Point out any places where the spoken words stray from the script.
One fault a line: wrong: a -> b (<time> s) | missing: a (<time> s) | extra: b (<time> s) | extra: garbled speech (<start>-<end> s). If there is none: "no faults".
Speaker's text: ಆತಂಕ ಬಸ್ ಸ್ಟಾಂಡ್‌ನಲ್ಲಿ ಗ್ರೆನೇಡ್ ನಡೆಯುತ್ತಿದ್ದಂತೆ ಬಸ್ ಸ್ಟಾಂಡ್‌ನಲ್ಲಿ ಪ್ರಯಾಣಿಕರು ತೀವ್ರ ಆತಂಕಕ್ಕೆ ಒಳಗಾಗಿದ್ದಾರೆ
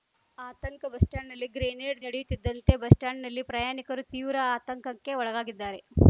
no faults